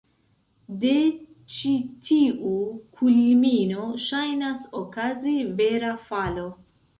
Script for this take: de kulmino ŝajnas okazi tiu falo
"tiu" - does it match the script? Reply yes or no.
no